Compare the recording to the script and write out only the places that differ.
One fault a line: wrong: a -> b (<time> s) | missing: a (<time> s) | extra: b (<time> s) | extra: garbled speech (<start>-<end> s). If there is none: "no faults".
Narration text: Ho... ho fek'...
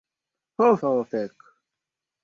no faults